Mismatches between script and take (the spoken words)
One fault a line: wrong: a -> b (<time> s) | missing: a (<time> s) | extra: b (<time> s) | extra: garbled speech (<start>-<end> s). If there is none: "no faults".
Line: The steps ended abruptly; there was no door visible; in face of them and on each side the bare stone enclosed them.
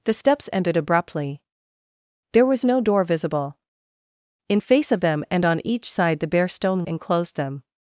no faults